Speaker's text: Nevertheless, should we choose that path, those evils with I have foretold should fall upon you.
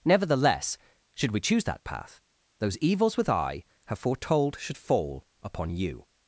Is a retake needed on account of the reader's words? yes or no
no